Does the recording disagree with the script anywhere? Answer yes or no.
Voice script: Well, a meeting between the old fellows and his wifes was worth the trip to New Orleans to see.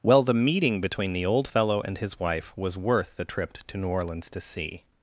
yes